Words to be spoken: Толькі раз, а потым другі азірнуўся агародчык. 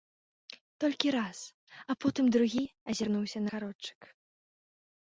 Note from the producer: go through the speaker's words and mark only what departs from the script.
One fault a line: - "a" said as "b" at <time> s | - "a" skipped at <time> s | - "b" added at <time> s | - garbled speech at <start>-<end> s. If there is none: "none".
none